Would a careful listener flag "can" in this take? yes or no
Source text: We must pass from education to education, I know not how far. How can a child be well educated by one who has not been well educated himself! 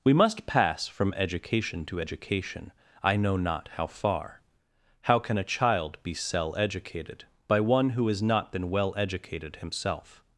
no